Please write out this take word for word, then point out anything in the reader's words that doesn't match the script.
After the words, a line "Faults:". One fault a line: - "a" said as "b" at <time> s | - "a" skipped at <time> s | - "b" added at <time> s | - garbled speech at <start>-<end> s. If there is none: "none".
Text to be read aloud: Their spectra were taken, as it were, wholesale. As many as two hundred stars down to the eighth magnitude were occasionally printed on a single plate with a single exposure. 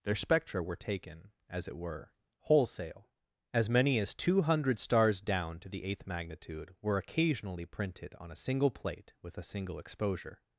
Their spectra were taken, as it were, wholesale. As many as two hundred stars down to the eighth magnitude were occasionally printed on a single plate with a single exposure.
Faults:
none